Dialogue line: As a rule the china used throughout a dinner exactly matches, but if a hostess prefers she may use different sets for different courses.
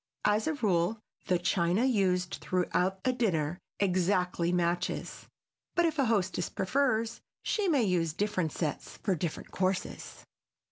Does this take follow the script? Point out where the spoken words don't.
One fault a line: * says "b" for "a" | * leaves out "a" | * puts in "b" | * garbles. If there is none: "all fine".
all fine